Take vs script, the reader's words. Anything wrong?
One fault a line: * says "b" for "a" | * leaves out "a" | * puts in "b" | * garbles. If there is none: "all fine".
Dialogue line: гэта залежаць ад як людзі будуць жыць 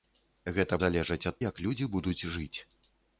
all fine